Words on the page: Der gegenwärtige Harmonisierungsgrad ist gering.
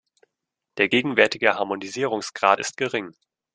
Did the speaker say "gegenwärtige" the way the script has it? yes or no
yes